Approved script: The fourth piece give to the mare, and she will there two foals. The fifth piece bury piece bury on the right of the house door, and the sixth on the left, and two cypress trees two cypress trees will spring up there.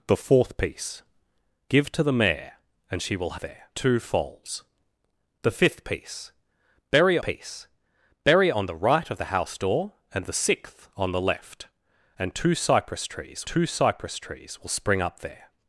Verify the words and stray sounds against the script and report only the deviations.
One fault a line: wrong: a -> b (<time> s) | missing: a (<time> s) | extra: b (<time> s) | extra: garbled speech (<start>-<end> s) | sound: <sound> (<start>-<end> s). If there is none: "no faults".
no faults